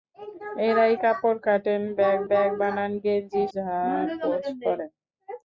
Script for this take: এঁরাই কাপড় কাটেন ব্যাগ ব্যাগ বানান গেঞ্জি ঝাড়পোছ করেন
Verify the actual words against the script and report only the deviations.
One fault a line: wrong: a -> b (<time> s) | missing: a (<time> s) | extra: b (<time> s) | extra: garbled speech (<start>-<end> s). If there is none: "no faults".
no faults